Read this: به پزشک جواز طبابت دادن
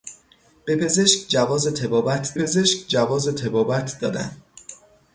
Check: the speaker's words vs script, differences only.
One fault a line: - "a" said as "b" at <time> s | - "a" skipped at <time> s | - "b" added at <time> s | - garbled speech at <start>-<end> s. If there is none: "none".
- "پزشک جواز طبابت" added at 2.3 s